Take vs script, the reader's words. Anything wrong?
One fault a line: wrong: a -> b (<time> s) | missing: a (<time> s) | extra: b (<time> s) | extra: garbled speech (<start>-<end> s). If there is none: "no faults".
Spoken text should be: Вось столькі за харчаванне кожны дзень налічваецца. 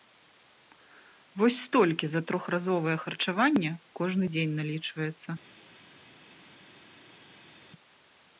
extra: трохразовае (2.3 s)